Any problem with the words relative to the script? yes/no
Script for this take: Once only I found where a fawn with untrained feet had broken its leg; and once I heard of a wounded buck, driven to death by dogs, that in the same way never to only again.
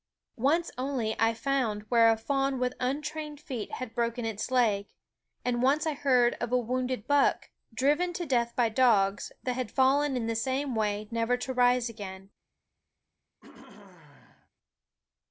yes